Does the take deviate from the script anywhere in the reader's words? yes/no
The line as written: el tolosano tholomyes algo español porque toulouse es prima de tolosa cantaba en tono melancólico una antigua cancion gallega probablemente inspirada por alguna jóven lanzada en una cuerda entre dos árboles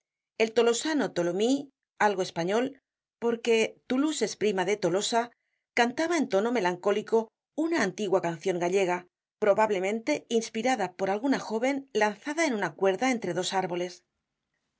no